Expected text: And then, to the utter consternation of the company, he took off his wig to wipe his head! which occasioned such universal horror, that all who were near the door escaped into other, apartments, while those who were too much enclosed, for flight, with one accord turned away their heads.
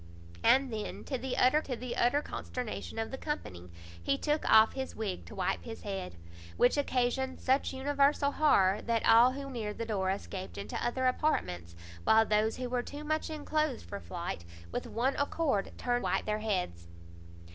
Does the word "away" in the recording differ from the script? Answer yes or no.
yes